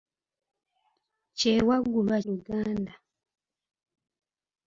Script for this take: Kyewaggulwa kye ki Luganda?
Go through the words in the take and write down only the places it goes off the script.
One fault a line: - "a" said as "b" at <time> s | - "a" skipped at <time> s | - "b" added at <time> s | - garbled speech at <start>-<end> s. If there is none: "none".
- "kye ki" skipped at 2.2 s